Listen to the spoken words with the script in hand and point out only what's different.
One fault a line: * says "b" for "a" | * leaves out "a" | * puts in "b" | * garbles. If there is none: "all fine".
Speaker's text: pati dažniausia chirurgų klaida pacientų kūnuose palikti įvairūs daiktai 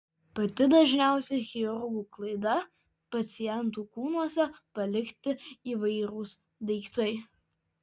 all fine